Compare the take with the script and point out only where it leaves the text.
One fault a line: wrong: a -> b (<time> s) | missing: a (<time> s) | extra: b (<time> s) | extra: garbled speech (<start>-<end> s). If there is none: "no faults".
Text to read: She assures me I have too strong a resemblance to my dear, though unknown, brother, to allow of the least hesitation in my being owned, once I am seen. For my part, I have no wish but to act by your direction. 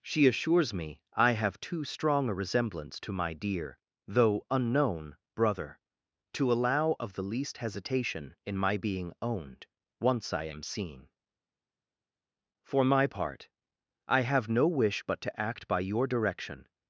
no faults